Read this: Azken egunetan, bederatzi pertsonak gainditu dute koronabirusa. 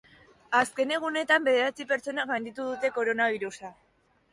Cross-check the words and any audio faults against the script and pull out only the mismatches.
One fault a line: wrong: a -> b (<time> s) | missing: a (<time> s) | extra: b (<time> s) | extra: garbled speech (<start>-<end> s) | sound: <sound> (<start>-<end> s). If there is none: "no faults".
no faults